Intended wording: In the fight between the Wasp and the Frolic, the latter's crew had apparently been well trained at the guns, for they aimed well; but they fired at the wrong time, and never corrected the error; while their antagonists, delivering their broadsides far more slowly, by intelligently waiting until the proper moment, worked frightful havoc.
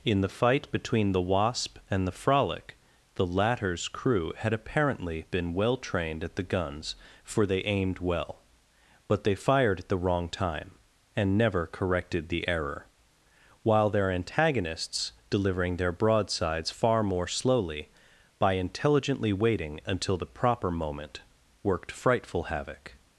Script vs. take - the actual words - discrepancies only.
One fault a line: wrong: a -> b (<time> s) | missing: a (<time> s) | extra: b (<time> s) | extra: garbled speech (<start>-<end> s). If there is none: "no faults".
no faults